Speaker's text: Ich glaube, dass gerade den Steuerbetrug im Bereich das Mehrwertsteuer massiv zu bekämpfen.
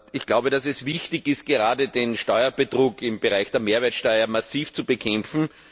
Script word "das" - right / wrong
wrong